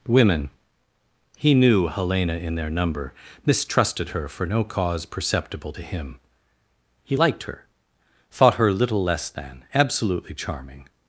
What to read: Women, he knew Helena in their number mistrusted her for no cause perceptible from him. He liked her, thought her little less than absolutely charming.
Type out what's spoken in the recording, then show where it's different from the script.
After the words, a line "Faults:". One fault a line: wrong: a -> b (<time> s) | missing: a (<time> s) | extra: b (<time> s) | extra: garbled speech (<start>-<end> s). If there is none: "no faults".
Women, he knew Helena in their number mistrusted her for no cause perceptible to him. He liked her, thought her little less than absolutely charming.
Faults:
wrong: from -> to (5.7 s)